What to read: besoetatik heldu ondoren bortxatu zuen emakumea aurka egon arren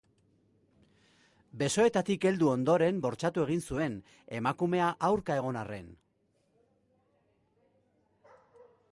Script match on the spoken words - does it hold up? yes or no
no